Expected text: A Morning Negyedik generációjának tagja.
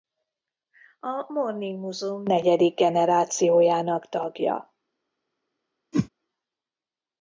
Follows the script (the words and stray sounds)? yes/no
no